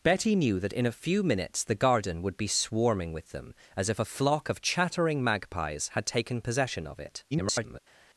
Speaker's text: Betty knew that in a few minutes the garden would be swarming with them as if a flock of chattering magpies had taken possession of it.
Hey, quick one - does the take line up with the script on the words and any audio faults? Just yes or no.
no